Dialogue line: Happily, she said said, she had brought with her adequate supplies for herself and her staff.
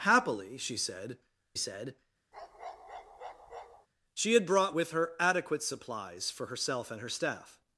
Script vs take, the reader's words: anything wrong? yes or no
no